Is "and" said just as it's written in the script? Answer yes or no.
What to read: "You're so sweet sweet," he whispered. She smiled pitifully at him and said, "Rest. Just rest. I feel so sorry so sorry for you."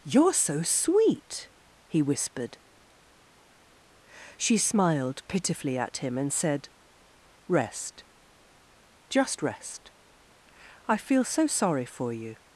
yes